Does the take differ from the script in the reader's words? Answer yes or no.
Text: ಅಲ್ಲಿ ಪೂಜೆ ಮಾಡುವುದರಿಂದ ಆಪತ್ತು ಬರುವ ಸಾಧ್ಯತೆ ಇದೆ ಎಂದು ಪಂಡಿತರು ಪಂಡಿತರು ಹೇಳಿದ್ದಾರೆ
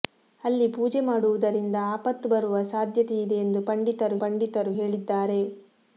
no